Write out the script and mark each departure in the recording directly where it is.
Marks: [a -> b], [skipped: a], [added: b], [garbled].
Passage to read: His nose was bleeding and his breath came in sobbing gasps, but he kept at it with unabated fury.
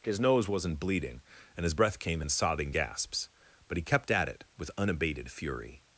His nose [was -> wasn't] bleeding and his breath came in sobbing gasps, but he kept at it with unabated fury.